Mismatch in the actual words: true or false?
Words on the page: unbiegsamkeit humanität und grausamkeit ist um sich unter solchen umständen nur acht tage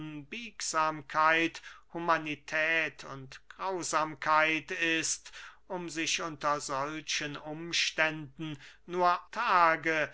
true